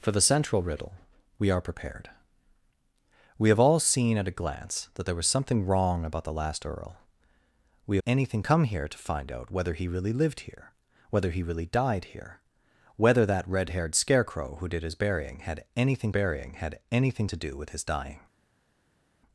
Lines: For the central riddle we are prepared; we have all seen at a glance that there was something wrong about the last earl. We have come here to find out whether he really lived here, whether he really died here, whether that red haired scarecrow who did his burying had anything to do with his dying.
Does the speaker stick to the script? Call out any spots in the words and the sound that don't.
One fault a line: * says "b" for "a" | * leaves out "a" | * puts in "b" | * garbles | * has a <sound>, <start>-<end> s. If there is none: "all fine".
* says "anything" for "have"
* puts in "burying had anything"